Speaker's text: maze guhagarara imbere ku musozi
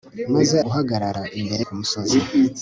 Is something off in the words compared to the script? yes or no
no